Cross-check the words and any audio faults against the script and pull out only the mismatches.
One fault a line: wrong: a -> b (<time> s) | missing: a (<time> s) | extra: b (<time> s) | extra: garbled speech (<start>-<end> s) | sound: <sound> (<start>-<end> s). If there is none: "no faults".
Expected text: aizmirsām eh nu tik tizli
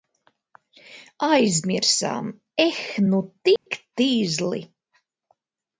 sound: dropout (3.6-3.7 s)